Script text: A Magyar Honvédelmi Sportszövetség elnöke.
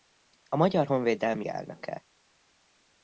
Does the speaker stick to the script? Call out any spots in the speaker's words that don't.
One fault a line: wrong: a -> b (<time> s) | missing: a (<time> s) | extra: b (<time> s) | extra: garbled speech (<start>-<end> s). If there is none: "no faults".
missing: Sportszövetség (1.4 s)